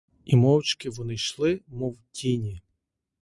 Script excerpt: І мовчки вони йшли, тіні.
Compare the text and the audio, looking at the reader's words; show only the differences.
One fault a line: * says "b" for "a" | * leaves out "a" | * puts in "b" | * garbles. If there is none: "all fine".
* puts in "мов"